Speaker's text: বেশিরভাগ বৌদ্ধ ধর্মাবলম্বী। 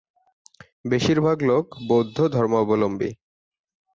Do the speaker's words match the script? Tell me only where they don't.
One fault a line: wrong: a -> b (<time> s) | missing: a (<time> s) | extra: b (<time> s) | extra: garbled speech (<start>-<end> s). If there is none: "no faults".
extra: লোক (1.4 s)